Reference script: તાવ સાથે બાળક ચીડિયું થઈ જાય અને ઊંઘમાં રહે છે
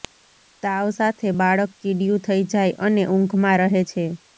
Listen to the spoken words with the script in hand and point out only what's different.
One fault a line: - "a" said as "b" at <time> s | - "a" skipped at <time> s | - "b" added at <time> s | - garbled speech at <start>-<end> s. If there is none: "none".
none